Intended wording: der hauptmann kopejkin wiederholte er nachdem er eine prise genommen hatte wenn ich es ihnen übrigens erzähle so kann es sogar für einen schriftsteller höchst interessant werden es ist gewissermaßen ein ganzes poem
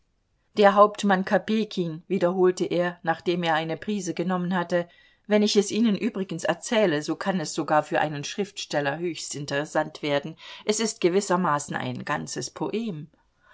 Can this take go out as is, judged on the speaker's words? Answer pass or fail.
pass